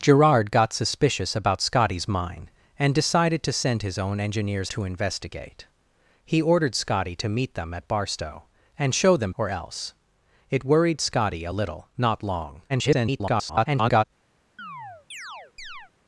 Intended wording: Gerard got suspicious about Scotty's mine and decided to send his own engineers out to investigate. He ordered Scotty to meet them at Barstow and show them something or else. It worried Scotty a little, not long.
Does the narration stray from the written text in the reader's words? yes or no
yes